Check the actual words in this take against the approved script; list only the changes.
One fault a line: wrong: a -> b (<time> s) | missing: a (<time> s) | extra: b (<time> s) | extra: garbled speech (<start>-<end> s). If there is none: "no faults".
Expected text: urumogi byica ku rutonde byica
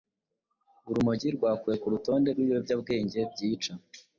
wrong: byica -> rwakuwe (1.4 s)
extra: rw'ibiyobyabwenge (2.3 s)